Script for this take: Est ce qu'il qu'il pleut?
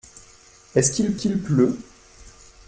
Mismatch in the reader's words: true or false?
false